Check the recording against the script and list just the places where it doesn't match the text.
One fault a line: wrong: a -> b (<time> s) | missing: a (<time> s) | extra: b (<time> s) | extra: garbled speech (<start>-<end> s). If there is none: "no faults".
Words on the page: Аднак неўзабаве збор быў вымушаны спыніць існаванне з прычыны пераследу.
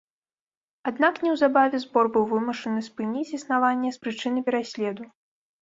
no faults